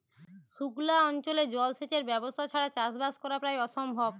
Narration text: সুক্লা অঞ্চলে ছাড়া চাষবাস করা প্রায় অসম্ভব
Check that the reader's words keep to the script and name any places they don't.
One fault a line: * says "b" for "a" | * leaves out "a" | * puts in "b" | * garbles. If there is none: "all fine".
* puts in "জল সেচের ব্যবস্থা"